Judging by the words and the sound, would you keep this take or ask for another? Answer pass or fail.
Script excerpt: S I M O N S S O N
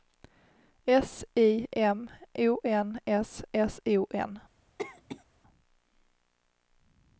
fail